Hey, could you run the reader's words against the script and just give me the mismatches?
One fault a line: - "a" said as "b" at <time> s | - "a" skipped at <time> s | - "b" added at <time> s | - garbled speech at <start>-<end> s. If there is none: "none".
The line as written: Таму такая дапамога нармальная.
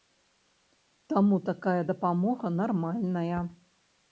none